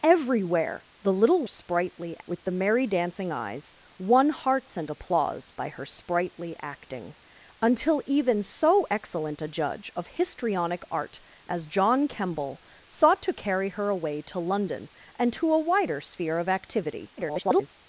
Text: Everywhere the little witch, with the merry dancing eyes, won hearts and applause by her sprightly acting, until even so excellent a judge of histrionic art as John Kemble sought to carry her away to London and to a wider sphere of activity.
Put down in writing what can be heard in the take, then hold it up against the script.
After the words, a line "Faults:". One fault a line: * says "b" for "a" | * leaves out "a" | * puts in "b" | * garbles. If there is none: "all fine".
Everywhere the little sprightly, with the merry dancing eyes, won hearts and applause by her sprightly acting, until even so excellent a judge of histrionic art as John Kemble sought to carry her away to London and to a wider sphere of activity. [garbled]
Faults:
* says "sprightly" for "witch"
* garbles